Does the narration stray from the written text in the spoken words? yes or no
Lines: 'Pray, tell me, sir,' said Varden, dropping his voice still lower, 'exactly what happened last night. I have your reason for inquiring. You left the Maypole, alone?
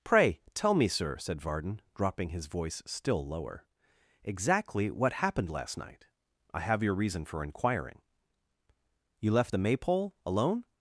no